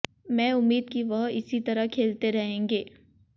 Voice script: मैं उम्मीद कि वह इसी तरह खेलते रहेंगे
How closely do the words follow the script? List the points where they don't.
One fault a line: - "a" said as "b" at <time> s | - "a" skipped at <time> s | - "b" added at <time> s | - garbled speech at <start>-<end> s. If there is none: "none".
none